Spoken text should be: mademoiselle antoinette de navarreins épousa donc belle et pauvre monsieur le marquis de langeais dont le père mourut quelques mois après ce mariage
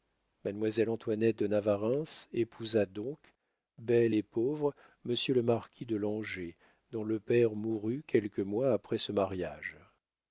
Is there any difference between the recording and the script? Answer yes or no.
no